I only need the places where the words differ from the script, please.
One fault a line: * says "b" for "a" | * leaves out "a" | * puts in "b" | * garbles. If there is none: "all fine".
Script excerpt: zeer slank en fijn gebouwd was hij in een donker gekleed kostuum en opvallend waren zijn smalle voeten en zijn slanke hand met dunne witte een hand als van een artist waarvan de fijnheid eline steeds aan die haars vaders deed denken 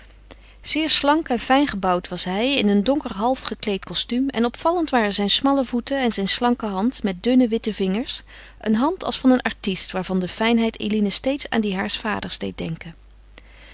* puts in "half"
* puts in "vingers"